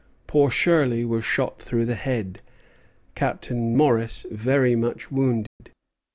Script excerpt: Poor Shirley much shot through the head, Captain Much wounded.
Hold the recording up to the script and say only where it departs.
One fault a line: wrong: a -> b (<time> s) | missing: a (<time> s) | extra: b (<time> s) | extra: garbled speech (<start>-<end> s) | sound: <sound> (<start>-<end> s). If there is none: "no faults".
wrong: much -> was (1.1 s)
extra: Morris very (3.8 s)
sound: dropout (5.5-5.6 s)